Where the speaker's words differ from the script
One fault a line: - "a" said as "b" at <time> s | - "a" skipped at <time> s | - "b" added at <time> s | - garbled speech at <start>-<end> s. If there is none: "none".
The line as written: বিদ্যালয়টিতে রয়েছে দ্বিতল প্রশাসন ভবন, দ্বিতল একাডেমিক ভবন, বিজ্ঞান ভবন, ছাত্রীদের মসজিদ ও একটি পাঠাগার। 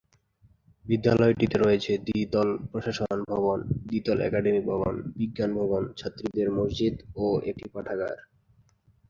none